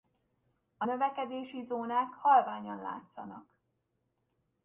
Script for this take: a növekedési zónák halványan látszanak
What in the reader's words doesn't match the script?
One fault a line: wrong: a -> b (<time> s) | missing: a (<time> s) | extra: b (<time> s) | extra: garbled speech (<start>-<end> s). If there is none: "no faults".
no faults